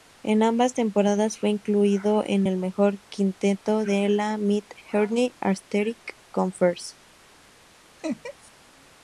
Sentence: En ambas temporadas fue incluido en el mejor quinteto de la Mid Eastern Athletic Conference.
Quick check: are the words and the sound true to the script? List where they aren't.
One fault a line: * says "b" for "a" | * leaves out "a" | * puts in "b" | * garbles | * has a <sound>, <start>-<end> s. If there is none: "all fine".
* has a laugh, 8.0-8.5 s